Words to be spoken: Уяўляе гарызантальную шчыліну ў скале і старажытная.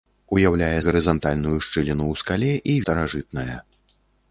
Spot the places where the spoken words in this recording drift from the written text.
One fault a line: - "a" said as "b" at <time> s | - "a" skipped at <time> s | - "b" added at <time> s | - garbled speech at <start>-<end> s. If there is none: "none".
none